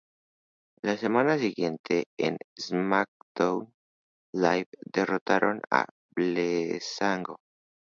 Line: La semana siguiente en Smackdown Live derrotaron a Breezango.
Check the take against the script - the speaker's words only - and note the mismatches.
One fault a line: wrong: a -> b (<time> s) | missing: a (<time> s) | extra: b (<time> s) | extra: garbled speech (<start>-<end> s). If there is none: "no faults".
no faults